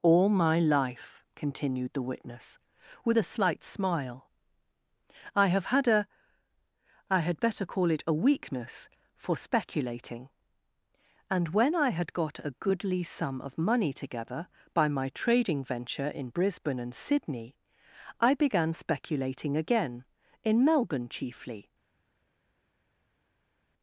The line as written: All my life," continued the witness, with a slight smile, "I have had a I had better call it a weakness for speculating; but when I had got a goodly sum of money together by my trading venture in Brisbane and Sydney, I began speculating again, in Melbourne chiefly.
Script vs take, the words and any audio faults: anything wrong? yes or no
yes